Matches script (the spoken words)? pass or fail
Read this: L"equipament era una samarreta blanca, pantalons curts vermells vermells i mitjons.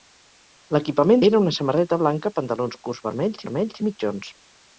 pass